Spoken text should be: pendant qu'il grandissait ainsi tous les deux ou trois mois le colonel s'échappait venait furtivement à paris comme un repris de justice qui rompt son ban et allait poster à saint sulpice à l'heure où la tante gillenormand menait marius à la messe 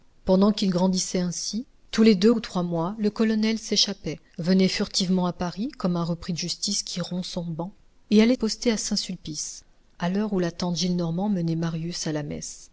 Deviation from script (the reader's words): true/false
false